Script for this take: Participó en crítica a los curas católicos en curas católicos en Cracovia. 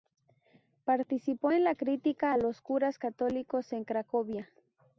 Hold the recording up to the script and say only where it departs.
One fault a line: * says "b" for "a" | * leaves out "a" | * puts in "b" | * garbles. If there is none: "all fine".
* puts in "la"
* leaves out "curas católicos en"